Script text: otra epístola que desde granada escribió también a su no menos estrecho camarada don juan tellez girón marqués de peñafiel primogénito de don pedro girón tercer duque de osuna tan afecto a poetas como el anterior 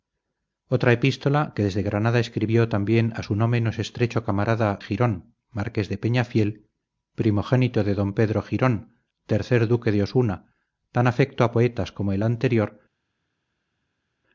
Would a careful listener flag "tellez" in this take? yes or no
yes